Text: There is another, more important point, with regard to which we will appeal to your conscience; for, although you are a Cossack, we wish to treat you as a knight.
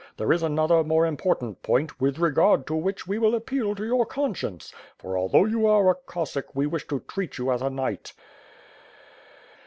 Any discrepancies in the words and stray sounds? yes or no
no